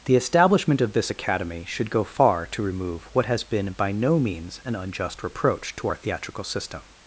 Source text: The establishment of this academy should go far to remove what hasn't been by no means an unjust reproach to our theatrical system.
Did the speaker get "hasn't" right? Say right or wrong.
wrong